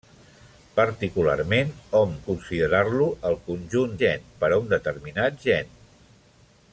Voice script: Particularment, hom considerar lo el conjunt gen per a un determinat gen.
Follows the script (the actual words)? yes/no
yes